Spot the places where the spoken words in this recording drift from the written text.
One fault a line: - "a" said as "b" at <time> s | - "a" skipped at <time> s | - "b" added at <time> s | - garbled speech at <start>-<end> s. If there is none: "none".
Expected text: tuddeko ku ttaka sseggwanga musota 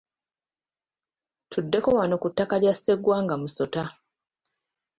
- "wano" added at 2.0 s
- "lya" added at 2.6 s